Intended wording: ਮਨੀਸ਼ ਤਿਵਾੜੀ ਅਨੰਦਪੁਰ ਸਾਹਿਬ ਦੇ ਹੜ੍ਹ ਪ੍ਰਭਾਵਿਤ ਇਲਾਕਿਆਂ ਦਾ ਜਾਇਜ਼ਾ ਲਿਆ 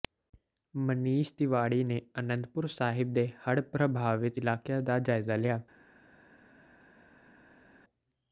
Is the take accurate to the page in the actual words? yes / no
no